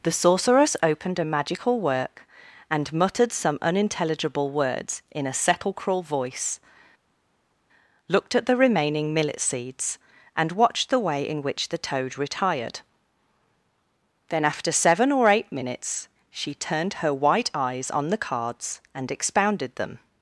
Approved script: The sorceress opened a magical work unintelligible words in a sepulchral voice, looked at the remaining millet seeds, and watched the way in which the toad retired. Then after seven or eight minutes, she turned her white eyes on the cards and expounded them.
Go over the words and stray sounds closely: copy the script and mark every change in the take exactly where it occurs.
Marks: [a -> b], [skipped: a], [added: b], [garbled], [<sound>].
The sorceress opened a magical work [added: and muttered some] unintelligible words in a sepulchral voice, looked at the remaining millet seeds, and watched the way in which the toad retired. Then after seven or eight minutes, she turned her white eyes on the cards and expounded them.